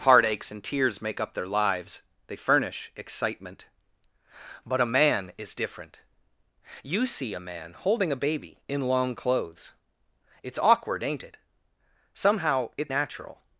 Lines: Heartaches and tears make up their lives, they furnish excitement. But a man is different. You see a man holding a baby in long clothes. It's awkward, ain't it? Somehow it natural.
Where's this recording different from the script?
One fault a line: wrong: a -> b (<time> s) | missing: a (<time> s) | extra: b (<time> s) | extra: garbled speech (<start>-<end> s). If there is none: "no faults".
no faults